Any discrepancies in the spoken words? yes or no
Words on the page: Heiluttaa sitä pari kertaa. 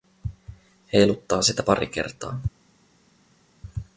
no